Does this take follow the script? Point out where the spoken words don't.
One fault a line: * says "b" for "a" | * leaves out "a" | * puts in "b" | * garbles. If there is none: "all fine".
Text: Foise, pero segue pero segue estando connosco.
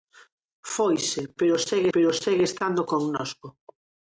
all fine